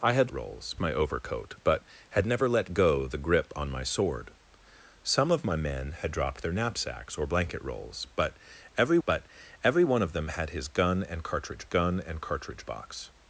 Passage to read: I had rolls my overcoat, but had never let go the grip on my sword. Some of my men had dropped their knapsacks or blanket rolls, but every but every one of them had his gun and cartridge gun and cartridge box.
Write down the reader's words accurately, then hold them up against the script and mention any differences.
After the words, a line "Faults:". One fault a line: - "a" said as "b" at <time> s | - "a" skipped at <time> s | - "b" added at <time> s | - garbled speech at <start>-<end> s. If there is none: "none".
I had rolls my overcoat, but had never let go the grip on my sword. Some of my men had dropped their knapsacks or blanket rolls, but every but every one of them had his gun and cartridge gun and cartridge box.
Faults:
none